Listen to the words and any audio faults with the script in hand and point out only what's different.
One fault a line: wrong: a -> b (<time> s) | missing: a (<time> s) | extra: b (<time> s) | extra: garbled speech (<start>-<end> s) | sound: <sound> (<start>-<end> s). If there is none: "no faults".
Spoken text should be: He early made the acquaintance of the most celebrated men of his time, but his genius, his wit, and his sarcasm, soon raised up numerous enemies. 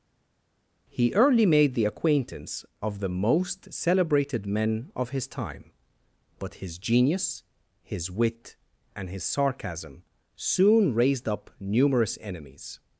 no faults